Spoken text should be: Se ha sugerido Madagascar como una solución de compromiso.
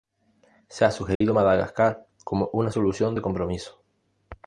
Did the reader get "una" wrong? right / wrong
right